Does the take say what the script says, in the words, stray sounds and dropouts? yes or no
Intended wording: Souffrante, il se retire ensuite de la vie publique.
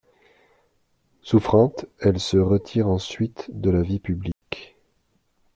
no